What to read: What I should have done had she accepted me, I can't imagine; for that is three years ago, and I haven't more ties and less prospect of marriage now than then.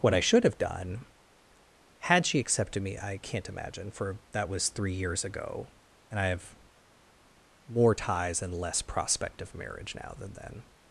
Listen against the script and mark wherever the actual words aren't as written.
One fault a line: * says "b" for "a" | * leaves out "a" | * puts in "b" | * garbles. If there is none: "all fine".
* says "was" for "is"
* says "have" for "haven't"